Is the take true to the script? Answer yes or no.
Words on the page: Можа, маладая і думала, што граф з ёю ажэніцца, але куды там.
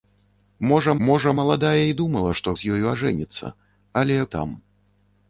no